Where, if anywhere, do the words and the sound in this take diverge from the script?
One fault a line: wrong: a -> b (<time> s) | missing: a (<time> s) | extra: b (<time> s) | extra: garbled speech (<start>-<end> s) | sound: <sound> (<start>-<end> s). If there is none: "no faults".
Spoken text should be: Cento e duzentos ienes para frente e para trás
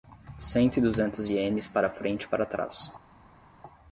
no faults